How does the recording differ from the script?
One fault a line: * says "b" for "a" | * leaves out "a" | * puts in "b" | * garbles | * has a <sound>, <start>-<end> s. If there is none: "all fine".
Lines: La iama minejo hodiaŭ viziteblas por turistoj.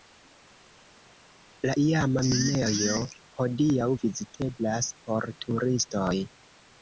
all fine